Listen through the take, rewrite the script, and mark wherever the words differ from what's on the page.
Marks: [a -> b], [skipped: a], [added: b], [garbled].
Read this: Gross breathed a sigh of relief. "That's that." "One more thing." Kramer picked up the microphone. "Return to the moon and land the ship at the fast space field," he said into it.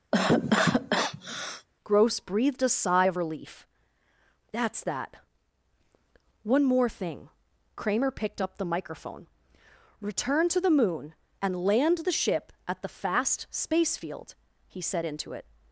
Gross breathed a sigh of relief. "That's that." "One more thing." Kramer picked up the microphone. "Return to the moon and land the ship at the fast space field," he said into it.